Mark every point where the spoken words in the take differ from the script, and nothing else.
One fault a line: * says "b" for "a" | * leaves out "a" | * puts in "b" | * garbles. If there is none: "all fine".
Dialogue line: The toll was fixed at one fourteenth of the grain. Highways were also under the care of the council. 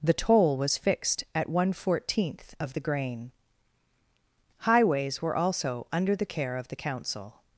all fine